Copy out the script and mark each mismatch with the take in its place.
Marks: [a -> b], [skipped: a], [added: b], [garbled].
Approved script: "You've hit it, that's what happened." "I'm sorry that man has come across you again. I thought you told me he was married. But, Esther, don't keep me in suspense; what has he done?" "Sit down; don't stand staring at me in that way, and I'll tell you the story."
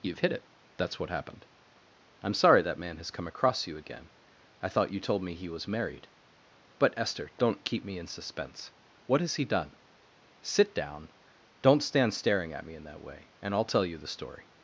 "You've hit it, that's what happened." "I'm sorry that man has come across you again. I thought you told me he was married. But, Esther, don't keep me in suspense; what has he done?" "Sit down; don't stand staring at me in that way, and I'll tell you the story."